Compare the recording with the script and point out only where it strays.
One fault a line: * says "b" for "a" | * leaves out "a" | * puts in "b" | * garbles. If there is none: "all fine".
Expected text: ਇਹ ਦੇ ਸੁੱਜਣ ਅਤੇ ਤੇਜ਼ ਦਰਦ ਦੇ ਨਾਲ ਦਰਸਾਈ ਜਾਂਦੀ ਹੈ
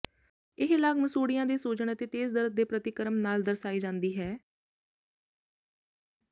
* puts in "ਲਾਗ ਮਸੂਡ਼ਿਆਂ"
* puts in "ਪ੍ਰਤੀਕਰਮ"